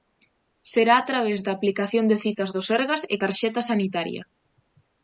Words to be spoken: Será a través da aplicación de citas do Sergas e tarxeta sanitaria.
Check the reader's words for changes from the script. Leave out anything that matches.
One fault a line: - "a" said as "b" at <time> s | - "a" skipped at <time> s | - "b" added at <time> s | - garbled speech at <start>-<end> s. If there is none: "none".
none